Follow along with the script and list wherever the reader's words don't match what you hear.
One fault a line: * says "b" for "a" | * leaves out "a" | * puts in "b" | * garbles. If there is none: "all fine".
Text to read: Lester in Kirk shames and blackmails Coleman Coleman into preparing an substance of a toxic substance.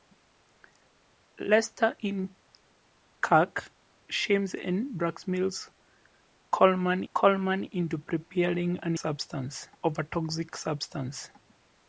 all fine